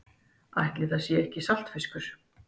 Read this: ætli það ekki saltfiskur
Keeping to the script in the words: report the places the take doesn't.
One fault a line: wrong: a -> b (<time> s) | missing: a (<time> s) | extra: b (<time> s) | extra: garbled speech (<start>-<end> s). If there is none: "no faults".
extra: sé (1.0 s)